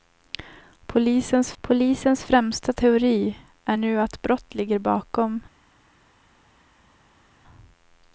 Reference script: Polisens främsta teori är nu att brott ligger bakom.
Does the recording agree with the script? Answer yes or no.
no